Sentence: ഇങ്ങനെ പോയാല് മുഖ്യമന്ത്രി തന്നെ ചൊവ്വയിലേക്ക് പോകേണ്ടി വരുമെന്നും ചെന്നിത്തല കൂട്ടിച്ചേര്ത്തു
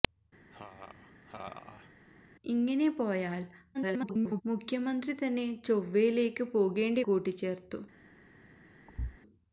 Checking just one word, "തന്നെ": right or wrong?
right